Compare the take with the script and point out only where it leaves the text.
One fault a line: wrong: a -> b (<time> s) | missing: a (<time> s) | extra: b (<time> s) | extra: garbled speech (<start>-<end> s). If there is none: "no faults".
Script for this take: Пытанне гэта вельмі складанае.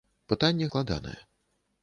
missing: гэта вельмі (0.7 s)